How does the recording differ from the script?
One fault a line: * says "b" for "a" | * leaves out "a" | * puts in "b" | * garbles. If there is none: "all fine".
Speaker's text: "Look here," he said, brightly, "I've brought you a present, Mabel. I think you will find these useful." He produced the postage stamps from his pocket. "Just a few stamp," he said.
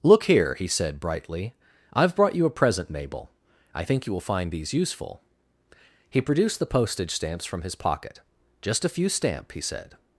all fine